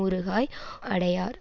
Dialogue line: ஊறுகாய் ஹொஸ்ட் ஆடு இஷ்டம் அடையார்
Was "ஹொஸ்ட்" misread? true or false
true